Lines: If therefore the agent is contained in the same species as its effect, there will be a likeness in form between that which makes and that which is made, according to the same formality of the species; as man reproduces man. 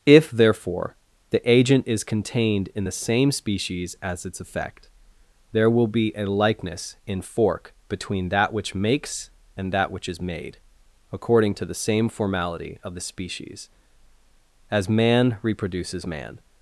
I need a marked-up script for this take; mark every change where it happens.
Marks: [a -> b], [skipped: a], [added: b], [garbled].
If therefore the agent is contained in the same species as its effect, there will be a likeness in [form -> fork] between that which makes and that which is made, according to the same formality of the species; as man reproduces man.